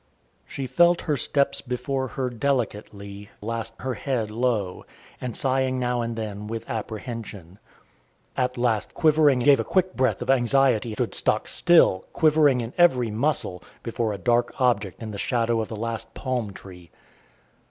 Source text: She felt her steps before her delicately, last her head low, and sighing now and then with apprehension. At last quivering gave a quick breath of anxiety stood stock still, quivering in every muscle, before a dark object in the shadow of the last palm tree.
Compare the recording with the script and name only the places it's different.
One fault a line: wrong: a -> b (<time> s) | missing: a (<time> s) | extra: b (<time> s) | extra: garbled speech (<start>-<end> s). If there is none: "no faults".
no faults